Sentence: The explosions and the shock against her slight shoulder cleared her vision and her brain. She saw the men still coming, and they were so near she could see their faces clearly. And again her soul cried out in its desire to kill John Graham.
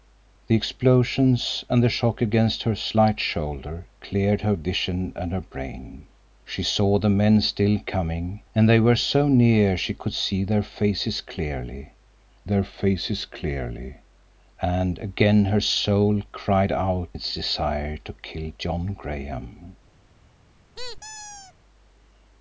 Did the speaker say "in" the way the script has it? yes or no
no